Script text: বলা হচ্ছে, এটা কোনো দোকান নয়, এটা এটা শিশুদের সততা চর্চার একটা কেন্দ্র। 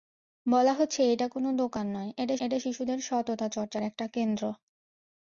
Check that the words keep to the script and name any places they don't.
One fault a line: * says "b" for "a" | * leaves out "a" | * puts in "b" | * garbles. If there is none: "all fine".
all fine